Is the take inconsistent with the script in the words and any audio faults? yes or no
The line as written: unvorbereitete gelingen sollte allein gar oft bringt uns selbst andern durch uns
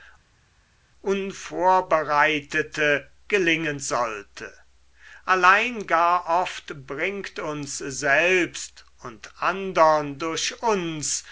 yes